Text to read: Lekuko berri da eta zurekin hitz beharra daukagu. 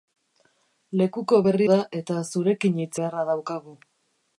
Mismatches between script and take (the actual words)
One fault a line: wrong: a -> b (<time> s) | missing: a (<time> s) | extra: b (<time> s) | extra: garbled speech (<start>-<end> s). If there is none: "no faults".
no faults